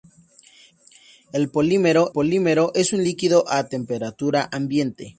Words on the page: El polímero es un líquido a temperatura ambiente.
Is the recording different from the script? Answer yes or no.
yes